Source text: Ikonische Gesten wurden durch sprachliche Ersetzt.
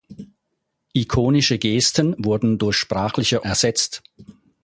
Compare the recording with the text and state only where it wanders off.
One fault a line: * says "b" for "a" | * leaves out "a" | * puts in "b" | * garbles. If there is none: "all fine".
all fine